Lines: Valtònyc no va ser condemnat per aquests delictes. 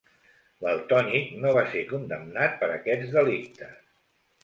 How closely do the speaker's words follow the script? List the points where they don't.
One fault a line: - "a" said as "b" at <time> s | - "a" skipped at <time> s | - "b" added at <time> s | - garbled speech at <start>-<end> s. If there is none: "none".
none